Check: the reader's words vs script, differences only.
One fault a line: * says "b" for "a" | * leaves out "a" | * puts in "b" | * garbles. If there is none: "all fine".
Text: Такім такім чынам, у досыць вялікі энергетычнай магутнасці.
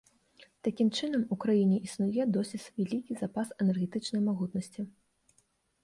* leaves out "такім"
* puts in "краіне існуе"
* puts in "запас"